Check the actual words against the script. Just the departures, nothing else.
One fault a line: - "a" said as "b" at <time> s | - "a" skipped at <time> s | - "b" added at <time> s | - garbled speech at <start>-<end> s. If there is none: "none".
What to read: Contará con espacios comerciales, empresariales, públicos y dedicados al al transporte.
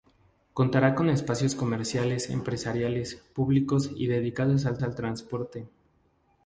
none